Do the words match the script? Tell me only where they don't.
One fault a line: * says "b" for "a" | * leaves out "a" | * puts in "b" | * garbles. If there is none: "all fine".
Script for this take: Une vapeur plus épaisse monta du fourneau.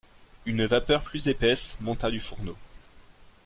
all fine